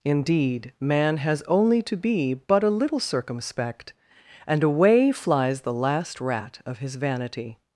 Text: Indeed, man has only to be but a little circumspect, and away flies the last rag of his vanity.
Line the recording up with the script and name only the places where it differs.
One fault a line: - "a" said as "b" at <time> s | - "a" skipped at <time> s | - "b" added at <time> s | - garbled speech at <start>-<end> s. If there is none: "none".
- "rag" said as "rat" at 6.2 s